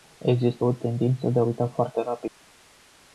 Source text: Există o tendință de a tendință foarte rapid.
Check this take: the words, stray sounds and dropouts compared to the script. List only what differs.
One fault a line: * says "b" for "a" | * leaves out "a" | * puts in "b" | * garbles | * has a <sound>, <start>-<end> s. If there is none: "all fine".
* says "uita" for "tendință"
* has a dropout, 2.3-2.4 s